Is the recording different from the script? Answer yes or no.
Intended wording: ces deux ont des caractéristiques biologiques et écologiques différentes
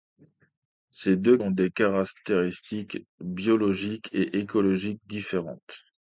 no